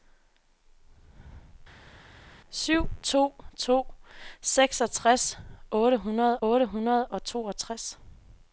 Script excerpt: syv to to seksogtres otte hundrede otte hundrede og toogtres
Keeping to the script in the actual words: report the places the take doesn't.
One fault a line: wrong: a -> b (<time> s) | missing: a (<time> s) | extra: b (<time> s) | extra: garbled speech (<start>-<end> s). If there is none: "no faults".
no faults